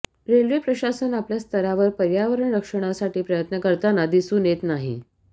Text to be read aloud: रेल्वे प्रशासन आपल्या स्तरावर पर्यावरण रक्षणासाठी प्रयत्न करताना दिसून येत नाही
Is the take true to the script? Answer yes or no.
yes